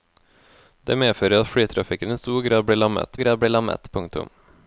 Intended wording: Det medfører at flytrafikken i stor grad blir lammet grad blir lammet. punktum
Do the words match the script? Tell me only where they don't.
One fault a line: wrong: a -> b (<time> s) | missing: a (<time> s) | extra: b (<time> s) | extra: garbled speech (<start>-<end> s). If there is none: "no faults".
no faults